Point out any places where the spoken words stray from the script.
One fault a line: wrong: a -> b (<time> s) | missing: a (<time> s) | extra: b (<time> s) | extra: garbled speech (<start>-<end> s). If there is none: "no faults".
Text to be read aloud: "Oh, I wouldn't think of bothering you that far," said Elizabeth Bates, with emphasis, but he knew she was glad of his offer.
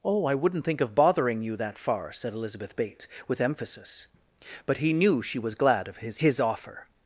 extra: his (6.2 s)